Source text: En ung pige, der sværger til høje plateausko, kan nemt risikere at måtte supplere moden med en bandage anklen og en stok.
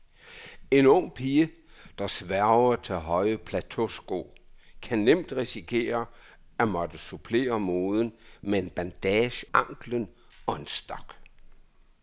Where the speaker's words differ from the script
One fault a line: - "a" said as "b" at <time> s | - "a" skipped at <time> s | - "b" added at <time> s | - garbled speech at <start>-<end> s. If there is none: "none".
none